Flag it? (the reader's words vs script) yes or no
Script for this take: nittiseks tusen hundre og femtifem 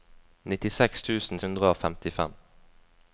no